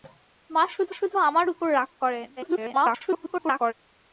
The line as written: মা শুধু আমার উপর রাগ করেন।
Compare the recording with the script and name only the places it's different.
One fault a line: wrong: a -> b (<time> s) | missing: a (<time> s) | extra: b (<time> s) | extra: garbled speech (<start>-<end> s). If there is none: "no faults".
extra: শুধু (0.9 s)
extra: garbled speech (2.4-3.7 s)